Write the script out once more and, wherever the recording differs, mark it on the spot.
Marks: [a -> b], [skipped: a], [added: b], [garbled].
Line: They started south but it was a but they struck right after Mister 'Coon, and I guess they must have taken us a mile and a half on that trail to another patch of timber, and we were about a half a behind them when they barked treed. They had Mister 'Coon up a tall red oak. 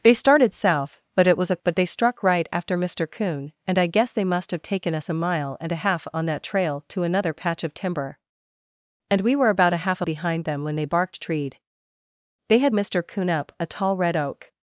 They started south but it was a but they struck right after Mister 'Coon, and I guess they must have taken us a mile and a half on that trail to another patch of timber, and we were about a half a behind them when they barked treed. They had Mister 'Coon up a tall red oak.